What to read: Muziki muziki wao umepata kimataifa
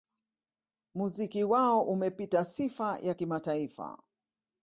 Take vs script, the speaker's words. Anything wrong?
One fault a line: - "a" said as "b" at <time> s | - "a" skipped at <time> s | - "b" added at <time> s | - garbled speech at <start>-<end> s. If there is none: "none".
- "muziki" skipped at 1.4 s
- "sifa ya" added at 2.4 s